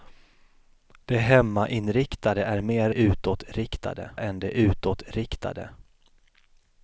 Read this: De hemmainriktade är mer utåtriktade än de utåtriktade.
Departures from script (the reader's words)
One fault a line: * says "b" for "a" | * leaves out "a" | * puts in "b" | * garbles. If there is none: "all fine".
all fine